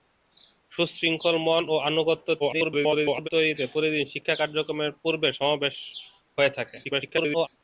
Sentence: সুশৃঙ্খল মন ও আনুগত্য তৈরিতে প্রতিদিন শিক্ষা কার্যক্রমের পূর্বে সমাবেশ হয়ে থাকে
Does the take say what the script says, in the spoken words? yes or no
no